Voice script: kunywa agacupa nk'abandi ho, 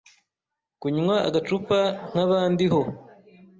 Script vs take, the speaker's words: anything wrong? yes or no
no